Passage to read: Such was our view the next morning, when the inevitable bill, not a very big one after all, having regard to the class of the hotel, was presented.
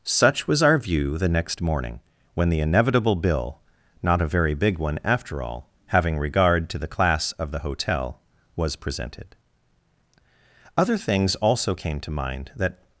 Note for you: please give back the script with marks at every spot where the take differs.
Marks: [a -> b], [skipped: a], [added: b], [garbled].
Such was our view the next morning, when the inevitable bill, not a very big one after all, having regard to the class of the hotel, was presented. [added: Other things also came to mind that]